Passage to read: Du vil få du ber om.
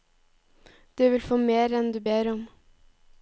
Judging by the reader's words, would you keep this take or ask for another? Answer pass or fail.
fail